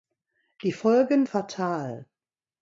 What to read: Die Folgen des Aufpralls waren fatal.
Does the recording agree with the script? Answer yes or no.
no